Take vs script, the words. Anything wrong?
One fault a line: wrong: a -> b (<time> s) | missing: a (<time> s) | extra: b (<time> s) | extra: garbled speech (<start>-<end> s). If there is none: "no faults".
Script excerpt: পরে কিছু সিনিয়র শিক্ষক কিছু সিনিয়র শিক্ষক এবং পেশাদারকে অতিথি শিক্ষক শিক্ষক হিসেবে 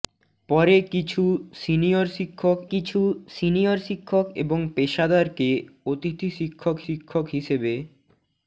no faults